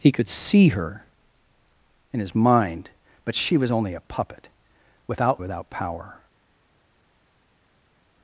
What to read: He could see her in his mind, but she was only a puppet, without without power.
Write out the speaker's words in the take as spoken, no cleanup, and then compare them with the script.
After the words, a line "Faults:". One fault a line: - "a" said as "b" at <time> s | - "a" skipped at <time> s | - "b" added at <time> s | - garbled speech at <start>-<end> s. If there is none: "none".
He could see her in his mind, but she was only a puppet, without without power.
Faults:
none